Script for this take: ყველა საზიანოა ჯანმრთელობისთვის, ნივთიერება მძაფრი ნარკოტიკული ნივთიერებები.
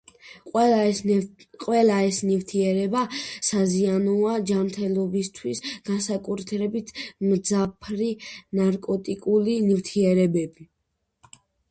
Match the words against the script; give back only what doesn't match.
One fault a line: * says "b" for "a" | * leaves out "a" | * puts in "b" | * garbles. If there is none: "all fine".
* puts in "ეს ნივთიერება"
* says "განსაკუთრებით" for "ნივთიერება"